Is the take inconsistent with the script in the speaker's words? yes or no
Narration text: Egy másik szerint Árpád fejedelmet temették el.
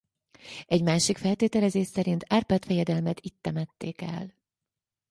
yes